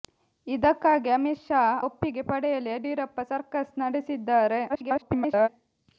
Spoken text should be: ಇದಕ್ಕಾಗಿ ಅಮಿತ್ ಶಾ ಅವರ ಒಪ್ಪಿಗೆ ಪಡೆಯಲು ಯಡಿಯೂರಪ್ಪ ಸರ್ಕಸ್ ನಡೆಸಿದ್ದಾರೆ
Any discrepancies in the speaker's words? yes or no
yes